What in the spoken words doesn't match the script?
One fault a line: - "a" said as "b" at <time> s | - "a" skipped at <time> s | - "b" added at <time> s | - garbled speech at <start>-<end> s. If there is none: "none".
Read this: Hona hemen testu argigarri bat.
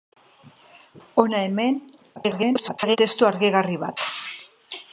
- garbled speech at 2.2-3.0 s